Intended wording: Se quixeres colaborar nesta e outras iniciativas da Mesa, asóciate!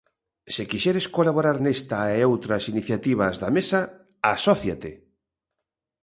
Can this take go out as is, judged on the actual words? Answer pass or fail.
pass